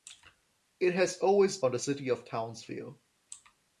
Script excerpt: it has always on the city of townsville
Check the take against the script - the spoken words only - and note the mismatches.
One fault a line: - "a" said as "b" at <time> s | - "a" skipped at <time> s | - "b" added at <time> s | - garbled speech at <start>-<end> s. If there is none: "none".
none